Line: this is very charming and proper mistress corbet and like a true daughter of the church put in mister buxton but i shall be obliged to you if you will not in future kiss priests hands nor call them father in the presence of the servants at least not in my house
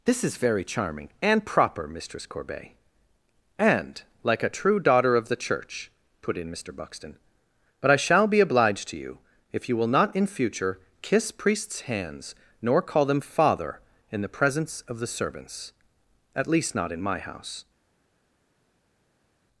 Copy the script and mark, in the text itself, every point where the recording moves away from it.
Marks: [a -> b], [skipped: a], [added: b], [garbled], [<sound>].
this is very charming and proper mistress corbet and like a true daughter of the church put in mister buxton but i shall be obliged to you if you will not in future kiss priests hands nor call them father in the presence of the servants at least not in my house